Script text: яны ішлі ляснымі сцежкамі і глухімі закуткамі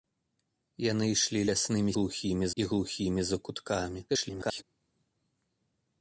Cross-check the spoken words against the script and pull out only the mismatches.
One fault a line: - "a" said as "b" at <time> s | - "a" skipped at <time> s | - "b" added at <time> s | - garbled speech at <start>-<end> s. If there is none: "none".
- "сцежкамі" said as "глухімі" at 2.0 s
- garbled speech at 4.1-4.6 s